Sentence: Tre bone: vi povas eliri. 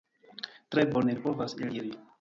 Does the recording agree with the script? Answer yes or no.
yes